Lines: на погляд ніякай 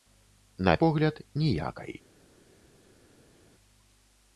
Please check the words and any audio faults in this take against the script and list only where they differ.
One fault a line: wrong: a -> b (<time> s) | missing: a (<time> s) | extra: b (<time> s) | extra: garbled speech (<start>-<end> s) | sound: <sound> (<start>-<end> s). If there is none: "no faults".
no faults